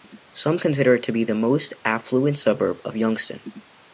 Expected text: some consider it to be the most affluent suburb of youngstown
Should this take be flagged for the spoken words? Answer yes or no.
no